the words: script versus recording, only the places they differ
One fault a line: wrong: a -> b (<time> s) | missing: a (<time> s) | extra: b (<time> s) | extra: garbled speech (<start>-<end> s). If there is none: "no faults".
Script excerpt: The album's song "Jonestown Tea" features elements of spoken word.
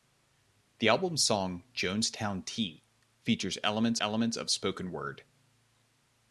extra: elements (4.0 s)